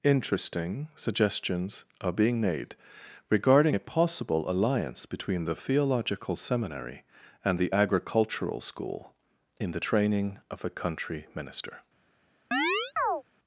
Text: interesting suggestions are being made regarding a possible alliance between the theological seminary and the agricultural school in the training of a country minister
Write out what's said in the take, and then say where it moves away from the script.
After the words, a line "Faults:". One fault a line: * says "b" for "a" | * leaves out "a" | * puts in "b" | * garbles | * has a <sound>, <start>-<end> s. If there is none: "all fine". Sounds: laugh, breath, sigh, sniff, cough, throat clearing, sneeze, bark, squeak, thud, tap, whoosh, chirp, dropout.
interesting suggestions are being made regarding a possible alliance between the theological seminary and the agricultural school in the training of a country minister
Faults:
* has a chirp, 12.5-13.2 s